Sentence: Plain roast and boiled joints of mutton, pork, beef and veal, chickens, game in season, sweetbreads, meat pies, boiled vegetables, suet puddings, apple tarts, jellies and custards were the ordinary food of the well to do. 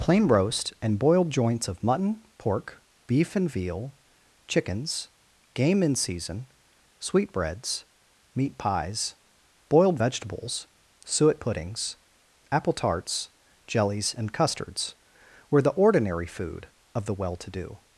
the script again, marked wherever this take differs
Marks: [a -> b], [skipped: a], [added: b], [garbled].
Plain roast and boiled joints of mutton, pork, beef and veal, chickens, game in season, sweetbreads, meat pies, boiled vegetables, suet puddings, apple tarts, jellies and custards were the ordinary food of the well to do.